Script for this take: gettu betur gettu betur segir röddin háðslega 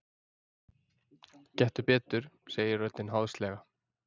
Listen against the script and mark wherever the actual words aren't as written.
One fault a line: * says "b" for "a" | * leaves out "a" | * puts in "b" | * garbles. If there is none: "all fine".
* leaves out "gettu betur"